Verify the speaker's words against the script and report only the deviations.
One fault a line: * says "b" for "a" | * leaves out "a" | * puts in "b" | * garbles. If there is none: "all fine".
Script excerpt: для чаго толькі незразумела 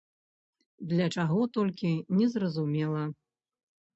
all fine